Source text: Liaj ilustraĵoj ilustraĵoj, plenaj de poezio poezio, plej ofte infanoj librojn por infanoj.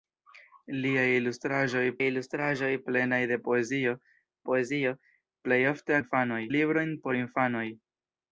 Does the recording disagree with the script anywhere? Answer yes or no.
no